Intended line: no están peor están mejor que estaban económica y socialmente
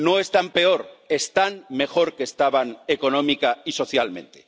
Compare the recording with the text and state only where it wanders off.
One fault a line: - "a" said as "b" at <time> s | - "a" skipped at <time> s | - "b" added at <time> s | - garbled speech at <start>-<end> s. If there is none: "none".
none